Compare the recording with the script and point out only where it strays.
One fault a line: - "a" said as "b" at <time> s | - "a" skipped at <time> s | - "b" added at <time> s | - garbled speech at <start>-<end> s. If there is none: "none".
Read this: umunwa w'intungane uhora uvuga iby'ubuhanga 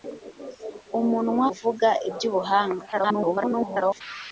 - "w'intungane uhora" skipped at 1.5 s
- garbled speech at 2.9-4.0 s